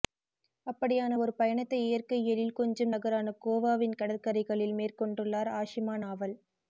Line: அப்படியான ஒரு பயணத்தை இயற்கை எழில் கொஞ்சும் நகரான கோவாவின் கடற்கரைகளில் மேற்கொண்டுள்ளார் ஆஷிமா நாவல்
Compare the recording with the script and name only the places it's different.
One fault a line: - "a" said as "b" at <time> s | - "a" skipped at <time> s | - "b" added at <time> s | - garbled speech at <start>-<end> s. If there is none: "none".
none